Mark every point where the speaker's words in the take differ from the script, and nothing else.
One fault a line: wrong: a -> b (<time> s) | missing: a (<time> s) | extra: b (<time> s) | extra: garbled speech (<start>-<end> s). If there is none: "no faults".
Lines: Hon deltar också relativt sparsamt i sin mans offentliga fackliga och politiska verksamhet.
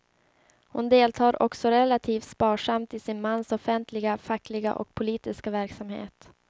no faults